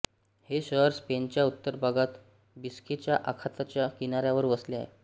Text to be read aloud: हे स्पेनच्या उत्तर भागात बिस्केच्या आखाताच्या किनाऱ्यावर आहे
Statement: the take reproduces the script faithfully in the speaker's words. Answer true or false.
false